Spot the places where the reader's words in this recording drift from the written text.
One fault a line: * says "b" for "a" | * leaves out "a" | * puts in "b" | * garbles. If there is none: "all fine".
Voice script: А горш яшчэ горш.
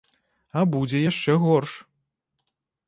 * says "будзе" for "горш"